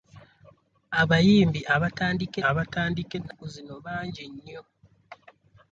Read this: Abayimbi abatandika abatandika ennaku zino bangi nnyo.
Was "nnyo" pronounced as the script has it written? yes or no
yes